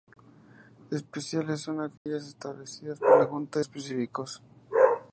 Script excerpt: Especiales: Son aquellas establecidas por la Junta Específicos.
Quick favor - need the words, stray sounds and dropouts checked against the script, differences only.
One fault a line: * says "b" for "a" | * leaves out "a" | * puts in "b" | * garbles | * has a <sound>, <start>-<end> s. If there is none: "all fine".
* has a dropout, 2.0-2.1 s